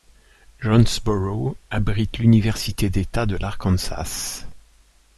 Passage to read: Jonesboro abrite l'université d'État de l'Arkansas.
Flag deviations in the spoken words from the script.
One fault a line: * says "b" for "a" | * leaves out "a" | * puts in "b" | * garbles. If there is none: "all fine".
all fine